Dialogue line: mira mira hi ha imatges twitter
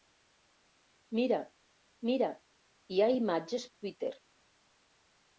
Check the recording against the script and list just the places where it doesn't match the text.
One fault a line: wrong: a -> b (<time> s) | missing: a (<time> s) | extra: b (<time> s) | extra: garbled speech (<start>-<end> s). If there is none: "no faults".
no faults